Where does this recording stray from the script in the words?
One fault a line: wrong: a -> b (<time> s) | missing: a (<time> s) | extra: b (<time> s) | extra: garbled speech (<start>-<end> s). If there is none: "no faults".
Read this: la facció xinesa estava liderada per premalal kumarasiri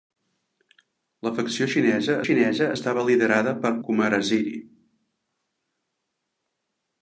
extra: xinesa (2.2 s)
missing: premalal (3.7 s)